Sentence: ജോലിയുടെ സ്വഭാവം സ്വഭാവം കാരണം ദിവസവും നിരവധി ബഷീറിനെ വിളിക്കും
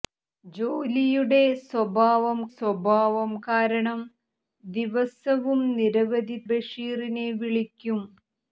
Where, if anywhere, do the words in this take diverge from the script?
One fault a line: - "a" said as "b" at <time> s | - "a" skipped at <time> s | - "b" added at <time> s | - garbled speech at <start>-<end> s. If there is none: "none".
none